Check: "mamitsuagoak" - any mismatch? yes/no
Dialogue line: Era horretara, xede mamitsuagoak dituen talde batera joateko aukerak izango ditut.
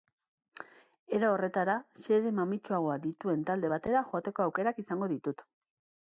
no